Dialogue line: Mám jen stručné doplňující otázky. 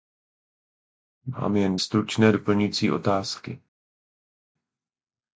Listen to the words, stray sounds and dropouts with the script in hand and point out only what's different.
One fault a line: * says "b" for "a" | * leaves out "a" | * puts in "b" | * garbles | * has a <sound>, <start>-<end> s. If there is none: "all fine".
all fine